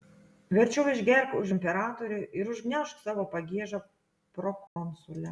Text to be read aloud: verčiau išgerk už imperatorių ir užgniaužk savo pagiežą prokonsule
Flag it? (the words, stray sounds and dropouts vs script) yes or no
yes